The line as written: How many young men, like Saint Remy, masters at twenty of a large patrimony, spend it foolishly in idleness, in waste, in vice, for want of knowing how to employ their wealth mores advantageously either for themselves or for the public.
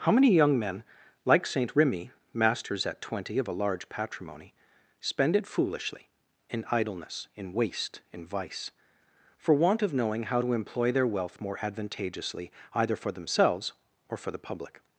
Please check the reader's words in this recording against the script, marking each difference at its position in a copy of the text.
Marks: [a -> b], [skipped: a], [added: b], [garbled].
How many young men, like Saint Remy, masters at twenty of a large patrimony, spend it foolishly in idleness, in waste, in vice, for want of knowing how to employ their wealth [mores -> more] advantageously either for themselves or for the public.